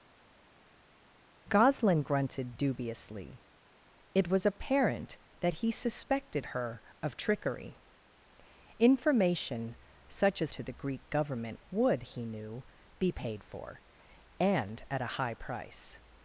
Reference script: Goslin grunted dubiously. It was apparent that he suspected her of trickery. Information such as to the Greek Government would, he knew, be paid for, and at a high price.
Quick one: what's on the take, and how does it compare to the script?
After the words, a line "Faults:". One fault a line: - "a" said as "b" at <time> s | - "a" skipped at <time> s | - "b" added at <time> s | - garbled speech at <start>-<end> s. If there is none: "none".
Goslin grunted dubiously. It was apparent that he suspected her of trickery. Information such as to the Greek Government would, he knew, be paid for, and at a high price.
Faults:
none